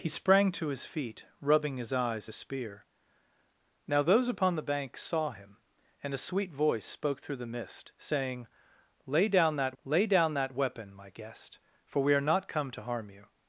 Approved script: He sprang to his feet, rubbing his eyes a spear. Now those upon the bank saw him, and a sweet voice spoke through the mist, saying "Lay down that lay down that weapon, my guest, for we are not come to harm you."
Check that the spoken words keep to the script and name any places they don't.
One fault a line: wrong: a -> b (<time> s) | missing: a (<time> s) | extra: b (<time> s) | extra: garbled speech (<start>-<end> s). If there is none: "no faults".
no faults